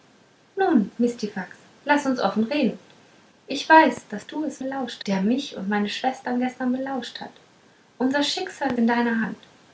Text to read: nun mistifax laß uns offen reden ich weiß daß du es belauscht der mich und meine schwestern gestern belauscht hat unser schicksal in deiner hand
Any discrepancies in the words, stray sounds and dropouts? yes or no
no